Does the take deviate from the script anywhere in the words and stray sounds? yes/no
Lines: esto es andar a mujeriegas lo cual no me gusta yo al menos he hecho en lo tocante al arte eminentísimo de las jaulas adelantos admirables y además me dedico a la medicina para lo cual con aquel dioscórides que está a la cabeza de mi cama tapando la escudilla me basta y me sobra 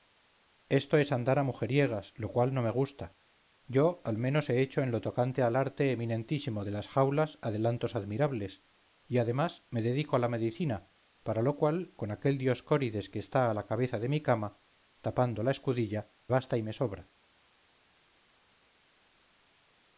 yes